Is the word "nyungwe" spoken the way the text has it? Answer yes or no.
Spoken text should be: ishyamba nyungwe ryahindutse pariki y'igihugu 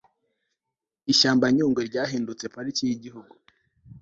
yes